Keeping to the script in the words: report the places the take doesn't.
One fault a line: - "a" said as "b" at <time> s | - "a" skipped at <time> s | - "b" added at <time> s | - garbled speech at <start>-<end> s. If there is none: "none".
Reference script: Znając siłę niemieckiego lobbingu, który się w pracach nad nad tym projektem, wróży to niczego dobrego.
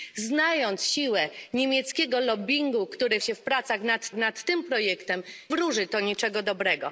none